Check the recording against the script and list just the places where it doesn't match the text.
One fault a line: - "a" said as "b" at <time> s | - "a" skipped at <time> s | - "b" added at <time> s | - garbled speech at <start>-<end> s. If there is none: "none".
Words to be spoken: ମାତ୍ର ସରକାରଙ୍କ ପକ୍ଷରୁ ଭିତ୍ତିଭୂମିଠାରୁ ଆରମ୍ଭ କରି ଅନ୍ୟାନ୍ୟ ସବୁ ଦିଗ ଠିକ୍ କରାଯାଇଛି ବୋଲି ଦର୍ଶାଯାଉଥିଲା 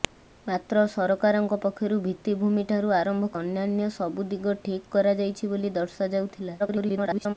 - "କରି" skipped at 3.3 s
- garbled speech at 6.6-7.3 s